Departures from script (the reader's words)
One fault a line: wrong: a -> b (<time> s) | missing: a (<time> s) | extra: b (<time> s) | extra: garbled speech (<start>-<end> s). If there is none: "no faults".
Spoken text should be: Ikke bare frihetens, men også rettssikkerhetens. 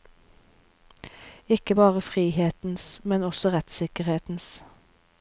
no faults